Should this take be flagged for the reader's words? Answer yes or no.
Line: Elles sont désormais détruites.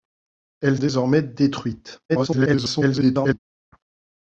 yes